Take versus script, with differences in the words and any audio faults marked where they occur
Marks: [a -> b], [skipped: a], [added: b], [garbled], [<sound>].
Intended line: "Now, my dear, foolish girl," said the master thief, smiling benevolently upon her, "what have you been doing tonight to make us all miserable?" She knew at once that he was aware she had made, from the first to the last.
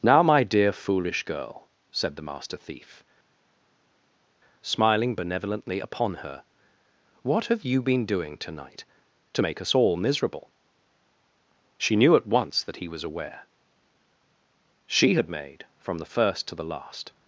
"Now, my dear, foolish girl," said the master thief, smiling benevolently upon her, "what have you been doing tonight to make us all miserable?" She knew at once that he was aware she had made, from the first to the last.